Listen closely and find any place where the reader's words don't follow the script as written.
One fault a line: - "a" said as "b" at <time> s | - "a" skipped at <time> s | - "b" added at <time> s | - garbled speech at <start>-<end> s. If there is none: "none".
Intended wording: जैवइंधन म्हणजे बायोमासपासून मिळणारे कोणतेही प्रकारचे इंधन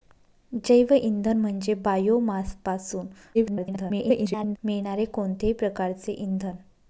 - garbled speech at 3.3-4.6 s